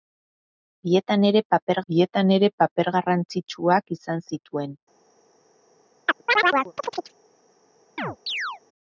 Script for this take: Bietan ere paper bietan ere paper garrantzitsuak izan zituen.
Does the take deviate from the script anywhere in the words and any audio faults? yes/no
yes